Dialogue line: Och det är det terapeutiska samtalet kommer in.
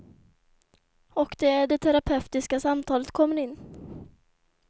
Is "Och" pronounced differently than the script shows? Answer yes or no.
no